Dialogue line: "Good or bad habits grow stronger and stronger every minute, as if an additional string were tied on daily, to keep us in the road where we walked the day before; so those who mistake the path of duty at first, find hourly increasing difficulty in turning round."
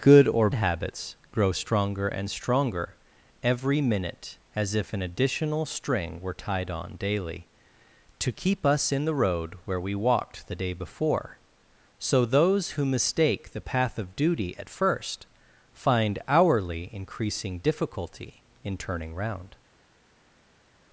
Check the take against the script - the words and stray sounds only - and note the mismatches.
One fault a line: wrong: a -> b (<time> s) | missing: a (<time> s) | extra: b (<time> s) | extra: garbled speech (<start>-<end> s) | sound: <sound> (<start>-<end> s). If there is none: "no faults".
missing: bad (0.5 s)